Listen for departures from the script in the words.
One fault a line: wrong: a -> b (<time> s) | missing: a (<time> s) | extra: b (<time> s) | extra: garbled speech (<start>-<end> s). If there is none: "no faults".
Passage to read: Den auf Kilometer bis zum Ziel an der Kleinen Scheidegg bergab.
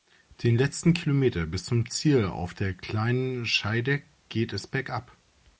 wrong: auf -> letzten (0.6 s)
wrong: an -> auf (2.3 s)
extra: geht es (4.3 s)